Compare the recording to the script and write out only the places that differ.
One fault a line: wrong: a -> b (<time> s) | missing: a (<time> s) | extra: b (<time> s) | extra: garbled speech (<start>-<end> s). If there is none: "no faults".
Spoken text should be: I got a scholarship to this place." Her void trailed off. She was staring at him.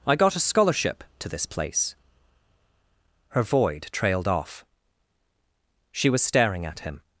no faults